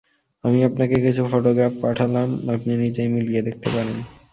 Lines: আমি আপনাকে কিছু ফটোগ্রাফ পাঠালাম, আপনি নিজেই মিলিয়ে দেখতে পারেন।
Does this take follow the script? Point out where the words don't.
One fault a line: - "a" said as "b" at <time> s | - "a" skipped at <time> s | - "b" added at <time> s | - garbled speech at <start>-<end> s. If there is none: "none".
none